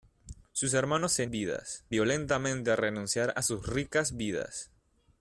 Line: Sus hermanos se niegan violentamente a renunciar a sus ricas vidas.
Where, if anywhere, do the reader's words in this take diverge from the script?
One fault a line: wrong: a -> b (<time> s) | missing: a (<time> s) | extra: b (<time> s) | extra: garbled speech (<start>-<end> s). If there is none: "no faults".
wrong: niegan -> vidas (1.3 s)